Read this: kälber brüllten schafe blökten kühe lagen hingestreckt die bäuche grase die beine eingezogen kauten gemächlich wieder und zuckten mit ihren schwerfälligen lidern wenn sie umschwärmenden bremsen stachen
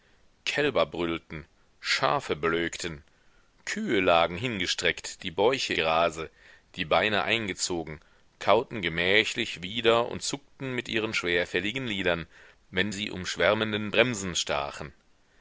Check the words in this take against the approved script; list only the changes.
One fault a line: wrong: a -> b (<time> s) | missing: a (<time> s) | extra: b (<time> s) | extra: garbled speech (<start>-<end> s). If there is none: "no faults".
no faults